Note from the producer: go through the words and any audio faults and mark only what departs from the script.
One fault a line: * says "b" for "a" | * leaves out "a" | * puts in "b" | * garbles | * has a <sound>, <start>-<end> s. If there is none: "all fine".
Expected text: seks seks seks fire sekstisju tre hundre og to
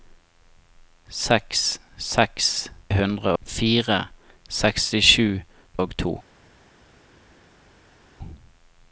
* says "hundre" for "seks"
* leaves out "tre hundre"